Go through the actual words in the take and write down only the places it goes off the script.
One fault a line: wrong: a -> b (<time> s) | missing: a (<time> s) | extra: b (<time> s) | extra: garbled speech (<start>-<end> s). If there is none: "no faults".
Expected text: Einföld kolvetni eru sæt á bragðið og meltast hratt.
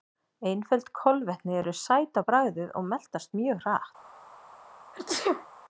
extra: mjög (3.4 s)